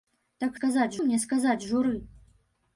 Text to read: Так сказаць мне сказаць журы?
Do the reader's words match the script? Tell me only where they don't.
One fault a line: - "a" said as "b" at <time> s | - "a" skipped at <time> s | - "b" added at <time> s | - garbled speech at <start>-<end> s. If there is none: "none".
none